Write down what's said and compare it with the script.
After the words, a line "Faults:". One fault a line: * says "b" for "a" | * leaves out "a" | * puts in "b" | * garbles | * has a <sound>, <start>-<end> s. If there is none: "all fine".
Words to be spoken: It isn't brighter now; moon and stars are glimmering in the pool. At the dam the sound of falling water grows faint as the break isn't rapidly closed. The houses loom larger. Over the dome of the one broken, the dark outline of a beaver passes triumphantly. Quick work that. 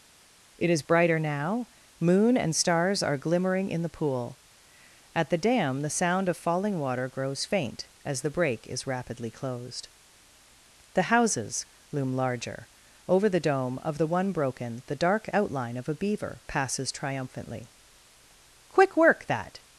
It is brighter now; moon and stars are glimmering in the pool. At the dam the sound of falling water grows faint as the break is rapidly closed. The houses loom larger. Over the dome of the one broken, the dark outline of a beaver passes triumphantly. Quick work that.
Faults:
* says "is" for "isn't"
* says "is" for "isn't"